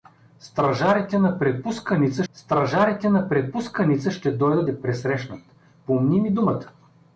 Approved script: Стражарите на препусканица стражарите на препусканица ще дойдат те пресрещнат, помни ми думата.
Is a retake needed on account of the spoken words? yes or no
no